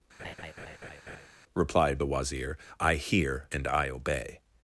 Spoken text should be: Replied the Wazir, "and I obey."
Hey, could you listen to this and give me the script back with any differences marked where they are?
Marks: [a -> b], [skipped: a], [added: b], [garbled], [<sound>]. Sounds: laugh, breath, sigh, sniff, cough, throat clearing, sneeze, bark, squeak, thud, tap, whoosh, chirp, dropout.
[laugh] Replied the Wazir, [added: I hear] "and I obey."